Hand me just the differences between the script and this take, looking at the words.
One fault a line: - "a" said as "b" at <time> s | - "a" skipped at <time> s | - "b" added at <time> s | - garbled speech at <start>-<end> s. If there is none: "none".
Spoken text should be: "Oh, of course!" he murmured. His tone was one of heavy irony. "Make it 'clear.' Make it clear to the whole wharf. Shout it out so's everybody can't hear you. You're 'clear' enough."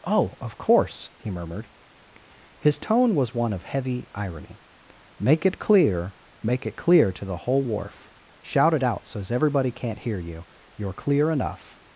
none